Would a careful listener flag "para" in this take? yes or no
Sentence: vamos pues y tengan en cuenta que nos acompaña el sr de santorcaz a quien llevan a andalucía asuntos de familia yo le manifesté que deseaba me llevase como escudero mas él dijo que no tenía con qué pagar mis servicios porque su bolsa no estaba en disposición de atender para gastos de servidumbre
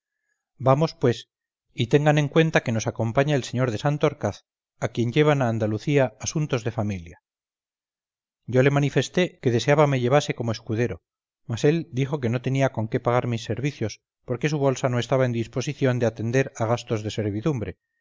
yes